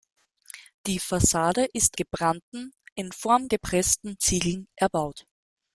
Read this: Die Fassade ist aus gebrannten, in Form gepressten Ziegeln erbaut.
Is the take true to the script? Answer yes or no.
no